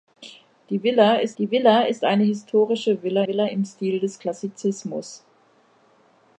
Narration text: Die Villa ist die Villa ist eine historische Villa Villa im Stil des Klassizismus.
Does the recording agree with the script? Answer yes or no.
yes